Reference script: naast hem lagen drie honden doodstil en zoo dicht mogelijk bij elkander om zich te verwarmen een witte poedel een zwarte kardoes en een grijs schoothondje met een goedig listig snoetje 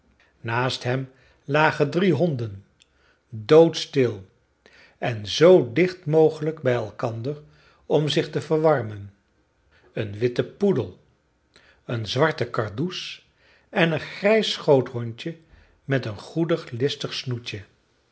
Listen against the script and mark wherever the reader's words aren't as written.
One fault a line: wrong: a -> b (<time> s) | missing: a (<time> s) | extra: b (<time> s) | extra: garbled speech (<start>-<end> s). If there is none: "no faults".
no faults